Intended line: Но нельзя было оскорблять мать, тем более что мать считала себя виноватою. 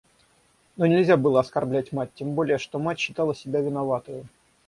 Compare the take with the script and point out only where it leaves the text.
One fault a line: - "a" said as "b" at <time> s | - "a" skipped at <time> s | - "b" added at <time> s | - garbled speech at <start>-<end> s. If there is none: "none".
none